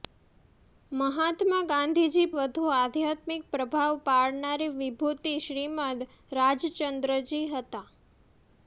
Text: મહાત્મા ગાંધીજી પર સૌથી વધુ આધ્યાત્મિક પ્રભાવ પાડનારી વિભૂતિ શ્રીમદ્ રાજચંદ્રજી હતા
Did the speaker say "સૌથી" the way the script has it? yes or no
no